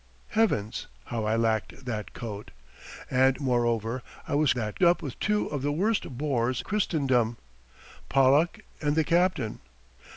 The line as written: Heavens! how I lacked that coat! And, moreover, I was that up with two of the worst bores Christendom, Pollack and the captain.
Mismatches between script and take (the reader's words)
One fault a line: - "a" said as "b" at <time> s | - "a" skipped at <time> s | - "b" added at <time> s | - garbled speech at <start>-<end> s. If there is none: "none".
none